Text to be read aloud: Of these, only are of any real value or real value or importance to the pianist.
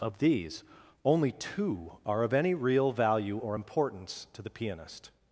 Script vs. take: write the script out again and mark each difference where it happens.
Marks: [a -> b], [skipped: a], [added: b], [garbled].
Of these, only [added: two] are of any real value or [skipped: real value or] importance to the pianist.